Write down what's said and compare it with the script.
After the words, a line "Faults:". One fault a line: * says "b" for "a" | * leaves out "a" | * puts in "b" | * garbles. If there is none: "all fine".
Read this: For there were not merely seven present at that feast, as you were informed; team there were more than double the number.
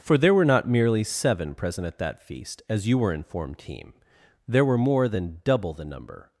For there were not merely seven present at that feast, as you were informed; team there were more than double the number.
Faults:
all fine